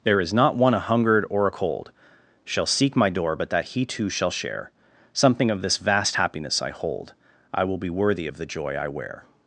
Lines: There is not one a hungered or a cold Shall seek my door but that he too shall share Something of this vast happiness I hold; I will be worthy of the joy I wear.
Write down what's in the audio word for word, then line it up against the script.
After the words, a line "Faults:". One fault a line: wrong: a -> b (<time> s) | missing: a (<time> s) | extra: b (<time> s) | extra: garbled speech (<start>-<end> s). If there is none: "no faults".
There is not one a hungered or a cold Shall seek my door but that he too shall share Something of this vast happiness I hold; I will be worthy of the joy I wear.
Faults:
no faults